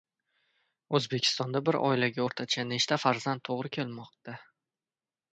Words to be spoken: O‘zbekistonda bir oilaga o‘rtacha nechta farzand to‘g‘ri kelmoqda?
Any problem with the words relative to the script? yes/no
no